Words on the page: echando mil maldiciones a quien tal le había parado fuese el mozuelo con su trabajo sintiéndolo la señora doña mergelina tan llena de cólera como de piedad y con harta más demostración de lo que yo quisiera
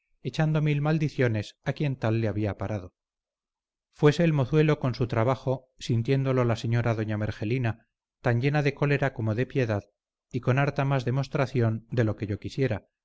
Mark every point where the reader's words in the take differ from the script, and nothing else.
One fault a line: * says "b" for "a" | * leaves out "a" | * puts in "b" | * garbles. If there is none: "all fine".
all fine